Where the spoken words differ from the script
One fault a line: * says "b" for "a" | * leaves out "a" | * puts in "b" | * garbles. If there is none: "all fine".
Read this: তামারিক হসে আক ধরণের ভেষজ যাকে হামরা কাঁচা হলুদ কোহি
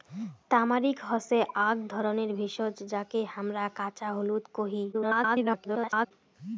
* garbles